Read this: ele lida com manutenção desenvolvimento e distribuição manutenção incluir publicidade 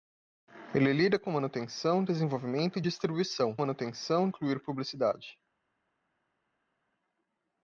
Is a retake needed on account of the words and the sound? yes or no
no